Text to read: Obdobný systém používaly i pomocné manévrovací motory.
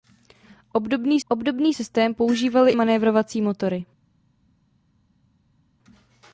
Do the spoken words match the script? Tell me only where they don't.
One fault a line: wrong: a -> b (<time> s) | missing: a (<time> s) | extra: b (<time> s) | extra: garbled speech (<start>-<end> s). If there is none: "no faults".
extra: obdobný (1.3 s)
missing: i pomocné (2.7 s)